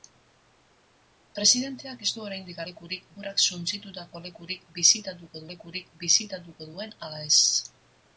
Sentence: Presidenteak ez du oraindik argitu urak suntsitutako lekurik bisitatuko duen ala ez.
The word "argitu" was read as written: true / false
false